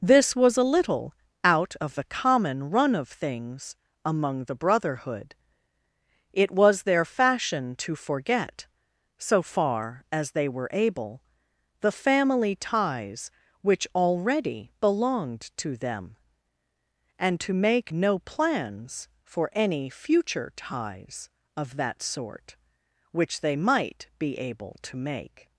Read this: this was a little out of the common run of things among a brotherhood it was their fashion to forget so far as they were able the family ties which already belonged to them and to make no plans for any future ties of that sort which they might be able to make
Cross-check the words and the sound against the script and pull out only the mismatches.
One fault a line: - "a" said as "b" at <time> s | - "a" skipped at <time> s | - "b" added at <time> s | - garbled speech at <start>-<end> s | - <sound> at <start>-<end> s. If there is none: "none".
- "a" said as "the" at 4.4 s